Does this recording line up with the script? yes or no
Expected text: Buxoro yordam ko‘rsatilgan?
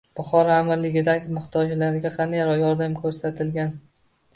no